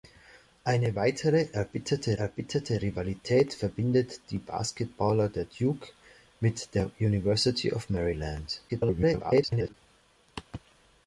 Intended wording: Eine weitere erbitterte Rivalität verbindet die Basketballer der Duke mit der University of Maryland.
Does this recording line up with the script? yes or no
no